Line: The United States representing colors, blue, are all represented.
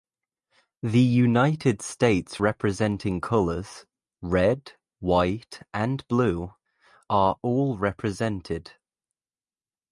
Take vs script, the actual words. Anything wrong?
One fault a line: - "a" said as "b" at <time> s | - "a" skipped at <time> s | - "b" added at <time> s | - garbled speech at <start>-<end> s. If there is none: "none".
- "red white and" added at 4.2 s